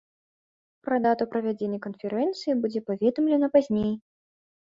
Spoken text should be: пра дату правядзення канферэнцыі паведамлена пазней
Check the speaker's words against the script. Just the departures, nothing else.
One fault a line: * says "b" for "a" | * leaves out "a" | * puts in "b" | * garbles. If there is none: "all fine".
* puts in "будзе"